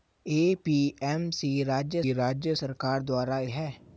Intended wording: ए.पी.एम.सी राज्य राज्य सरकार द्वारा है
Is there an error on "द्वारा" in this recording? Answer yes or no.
no